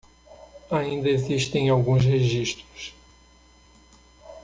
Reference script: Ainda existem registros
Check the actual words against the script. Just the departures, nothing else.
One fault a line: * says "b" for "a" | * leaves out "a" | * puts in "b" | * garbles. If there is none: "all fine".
* puts in "alguns"